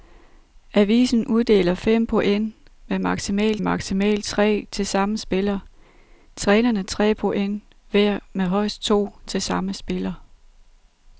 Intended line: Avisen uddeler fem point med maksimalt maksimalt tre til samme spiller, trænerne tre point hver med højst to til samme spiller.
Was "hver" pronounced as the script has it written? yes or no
yes